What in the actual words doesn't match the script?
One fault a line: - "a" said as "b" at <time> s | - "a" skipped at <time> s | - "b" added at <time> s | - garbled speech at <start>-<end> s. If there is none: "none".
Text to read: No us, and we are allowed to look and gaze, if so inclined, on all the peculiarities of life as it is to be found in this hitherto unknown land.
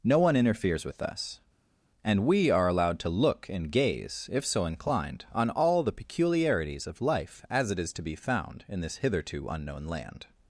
- "one interferes with" added at 0.2 s